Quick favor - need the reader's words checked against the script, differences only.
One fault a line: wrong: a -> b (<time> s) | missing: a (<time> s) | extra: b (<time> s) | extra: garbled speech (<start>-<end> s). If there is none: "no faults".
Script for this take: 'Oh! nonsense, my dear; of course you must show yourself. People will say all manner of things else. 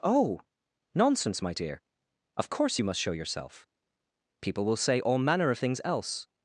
no faults